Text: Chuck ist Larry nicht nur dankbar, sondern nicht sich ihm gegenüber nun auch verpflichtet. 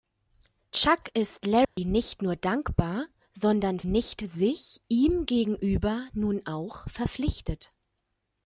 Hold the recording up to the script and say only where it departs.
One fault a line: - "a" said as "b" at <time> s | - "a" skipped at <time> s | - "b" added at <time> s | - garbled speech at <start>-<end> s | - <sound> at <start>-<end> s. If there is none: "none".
- dropout at 1.6-1.8 s